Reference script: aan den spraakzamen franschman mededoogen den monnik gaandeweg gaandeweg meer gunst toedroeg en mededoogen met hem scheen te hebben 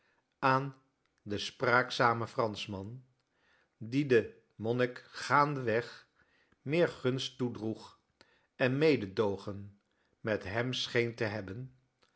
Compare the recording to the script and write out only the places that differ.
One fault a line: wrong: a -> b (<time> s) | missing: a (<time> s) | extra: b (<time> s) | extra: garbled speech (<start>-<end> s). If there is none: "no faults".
wrong: mededoogen -> die (3.8 s)
missing: gaandeweg (6.1 s)